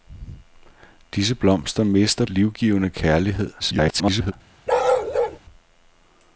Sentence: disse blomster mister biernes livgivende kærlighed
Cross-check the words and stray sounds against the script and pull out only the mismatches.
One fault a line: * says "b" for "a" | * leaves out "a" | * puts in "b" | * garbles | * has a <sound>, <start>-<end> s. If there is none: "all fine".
* leaves out "biernes"
* garbles
* has a bark, 4.7-5.4 s